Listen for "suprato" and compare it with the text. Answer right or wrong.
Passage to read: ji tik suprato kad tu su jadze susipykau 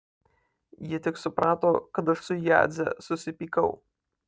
right